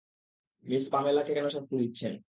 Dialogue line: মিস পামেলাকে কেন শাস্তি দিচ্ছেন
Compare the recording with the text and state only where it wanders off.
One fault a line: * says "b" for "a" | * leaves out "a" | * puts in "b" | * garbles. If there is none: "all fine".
all fine